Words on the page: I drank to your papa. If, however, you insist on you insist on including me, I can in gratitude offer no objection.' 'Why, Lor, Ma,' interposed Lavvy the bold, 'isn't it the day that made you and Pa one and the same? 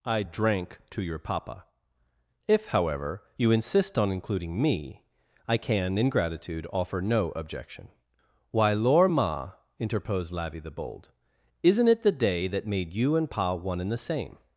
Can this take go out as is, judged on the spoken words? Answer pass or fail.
fail